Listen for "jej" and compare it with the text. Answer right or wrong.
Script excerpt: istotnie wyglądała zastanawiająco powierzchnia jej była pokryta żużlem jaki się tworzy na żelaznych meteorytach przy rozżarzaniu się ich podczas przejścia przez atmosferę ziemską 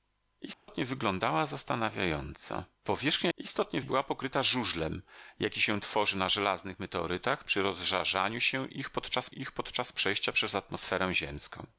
wrong